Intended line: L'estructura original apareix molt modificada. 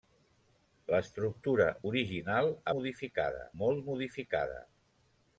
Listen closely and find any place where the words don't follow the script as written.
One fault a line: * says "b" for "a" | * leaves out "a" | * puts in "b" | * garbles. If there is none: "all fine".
* says "modificada" for "apareix"